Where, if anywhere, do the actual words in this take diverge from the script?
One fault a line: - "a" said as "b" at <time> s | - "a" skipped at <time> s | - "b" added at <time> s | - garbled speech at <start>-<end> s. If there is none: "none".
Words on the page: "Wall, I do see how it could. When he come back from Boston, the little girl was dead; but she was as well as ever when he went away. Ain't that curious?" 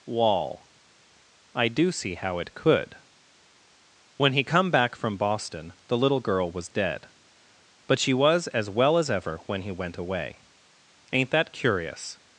none